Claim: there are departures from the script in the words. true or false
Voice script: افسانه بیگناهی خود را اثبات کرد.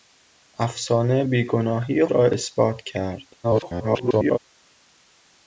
true